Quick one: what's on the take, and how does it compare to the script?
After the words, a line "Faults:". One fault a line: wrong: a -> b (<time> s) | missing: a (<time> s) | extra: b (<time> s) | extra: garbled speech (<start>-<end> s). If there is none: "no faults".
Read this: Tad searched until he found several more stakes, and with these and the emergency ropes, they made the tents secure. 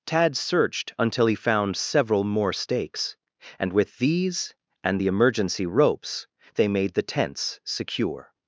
Tad searched until he found several more stakes, and with these and the emergency ropes, they made the tents secure.
Faults:
no faults